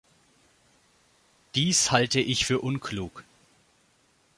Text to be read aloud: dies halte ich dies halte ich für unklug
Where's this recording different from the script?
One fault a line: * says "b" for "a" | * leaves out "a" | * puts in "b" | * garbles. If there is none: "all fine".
* leaves out "dies halte ich"